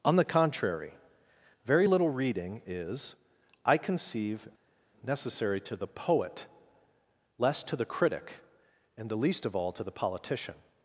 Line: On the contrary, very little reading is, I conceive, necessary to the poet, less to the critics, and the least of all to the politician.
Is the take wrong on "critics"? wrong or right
wrong